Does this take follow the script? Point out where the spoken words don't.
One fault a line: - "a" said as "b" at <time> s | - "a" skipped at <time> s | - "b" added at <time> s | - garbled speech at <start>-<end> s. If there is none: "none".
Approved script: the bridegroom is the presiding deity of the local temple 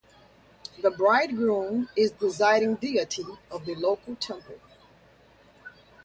- "the" skipped at 2.1 s